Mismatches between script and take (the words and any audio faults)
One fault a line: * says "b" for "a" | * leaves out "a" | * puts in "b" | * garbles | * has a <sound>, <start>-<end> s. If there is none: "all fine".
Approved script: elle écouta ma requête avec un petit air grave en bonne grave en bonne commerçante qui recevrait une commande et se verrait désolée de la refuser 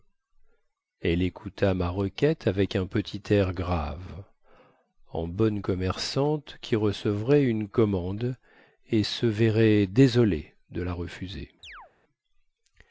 * leaves out "grave en bonne"
* has a chirp, 11.6-11.9 s